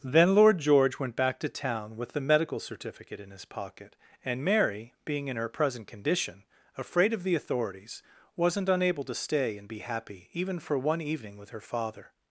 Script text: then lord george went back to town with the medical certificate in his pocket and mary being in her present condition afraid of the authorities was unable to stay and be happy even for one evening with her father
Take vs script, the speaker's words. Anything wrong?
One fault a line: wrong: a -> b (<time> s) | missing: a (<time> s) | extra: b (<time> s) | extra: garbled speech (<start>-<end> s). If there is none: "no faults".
wrong: was -> wasn't (8.3 s)